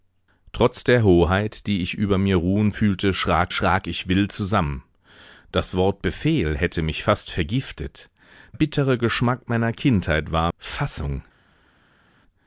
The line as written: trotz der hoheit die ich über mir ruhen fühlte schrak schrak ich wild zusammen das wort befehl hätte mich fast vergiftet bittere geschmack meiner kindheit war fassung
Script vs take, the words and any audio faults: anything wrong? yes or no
no